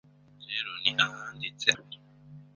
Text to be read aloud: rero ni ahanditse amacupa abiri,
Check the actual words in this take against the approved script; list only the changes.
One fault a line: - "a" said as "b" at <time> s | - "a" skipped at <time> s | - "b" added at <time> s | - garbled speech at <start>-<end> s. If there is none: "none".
- "amacupa" skipped at 1.7 s